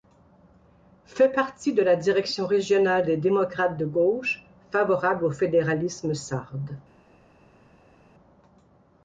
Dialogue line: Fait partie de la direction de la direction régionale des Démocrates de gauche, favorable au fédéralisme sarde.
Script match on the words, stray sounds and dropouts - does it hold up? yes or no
no